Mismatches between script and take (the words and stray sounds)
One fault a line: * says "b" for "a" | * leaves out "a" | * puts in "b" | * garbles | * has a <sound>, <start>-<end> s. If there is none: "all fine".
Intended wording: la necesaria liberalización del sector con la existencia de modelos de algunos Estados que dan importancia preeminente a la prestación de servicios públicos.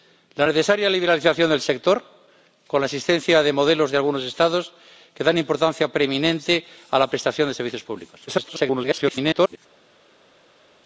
* garbles